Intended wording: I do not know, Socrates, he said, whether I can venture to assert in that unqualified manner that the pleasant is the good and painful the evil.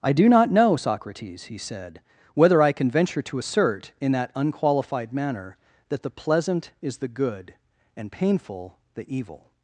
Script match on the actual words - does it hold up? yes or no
yes